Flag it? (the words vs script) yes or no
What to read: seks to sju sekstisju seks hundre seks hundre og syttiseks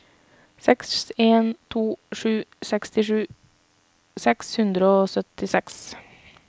yes